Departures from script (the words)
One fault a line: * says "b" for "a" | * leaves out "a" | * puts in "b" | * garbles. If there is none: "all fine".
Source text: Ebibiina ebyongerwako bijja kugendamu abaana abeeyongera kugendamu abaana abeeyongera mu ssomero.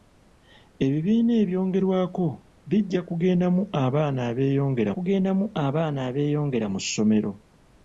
all fine